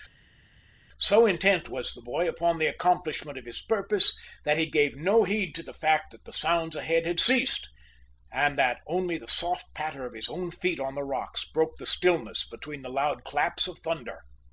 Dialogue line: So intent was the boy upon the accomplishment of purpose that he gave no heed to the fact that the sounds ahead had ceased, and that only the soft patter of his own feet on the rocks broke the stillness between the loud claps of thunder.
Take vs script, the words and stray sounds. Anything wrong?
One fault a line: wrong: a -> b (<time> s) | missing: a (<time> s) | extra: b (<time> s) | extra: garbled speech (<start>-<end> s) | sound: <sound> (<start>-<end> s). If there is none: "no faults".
extra: his (3.5 s)